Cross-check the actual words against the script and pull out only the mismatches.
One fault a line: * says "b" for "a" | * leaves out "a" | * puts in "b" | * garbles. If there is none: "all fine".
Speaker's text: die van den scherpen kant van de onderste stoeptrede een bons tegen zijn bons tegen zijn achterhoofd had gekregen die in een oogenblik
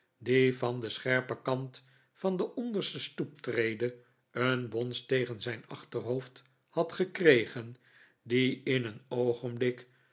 * leaves out "bons tegen zijn"